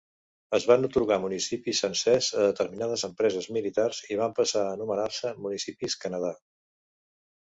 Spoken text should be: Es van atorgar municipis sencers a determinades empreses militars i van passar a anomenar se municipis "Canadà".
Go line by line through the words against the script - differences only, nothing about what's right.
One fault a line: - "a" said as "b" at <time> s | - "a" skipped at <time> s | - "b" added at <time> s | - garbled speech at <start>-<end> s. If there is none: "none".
none